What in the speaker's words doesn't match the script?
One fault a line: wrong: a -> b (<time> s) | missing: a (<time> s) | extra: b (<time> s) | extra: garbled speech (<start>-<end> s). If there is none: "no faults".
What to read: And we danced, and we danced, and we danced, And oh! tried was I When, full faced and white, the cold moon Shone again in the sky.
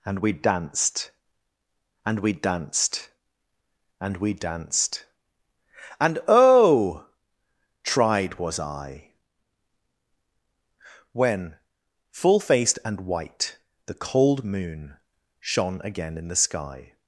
no faults